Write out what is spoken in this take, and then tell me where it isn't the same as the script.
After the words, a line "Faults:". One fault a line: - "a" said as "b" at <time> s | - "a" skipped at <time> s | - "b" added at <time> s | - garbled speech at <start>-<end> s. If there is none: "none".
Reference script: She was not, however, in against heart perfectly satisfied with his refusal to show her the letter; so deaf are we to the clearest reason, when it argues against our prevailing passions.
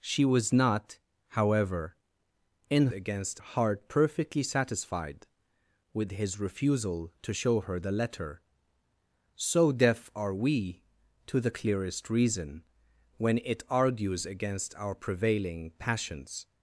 She was not, however, in against heart perfectly satisfied with his refusal to show her the letter; so deaf are we to the clearest reason, when it argues against our prevailing passions.
Faults:
none